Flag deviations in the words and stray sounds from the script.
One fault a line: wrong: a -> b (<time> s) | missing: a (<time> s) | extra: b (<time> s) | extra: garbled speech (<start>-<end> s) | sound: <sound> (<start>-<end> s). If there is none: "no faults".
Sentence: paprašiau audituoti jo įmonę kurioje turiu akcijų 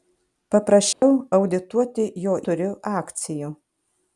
sound: dropout (0.9-1.0 s)
missing: įmonę kurioje (2.4 s)